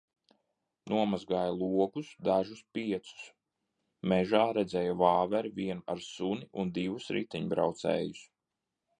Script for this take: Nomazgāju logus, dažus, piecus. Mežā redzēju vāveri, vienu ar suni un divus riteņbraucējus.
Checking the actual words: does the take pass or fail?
pass